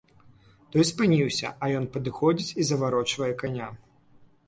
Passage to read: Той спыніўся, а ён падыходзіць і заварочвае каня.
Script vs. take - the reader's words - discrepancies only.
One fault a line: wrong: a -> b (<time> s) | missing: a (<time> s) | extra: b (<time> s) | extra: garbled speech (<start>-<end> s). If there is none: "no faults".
no faults